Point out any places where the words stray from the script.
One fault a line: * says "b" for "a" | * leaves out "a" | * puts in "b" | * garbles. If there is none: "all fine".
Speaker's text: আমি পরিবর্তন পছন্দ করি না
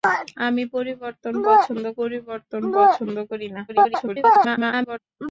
* puts in "পরিবর্তন পছন্দ"
* garbles